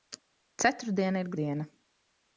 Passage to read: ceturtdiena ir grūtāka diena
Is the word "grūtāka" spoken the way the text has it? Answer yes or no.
no